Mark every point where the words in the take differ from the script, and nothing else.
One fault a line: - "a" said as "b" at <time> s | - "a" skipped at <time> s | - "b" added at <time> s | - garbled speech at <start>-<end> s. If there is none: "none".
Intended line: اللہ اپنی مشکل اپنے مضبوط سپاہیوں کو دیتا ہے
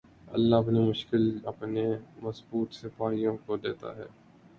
none